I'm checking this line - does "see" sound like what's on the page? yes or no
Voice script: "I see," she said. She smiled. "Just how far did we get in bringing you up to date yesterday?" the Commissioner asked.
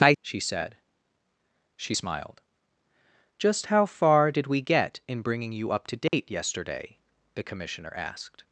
no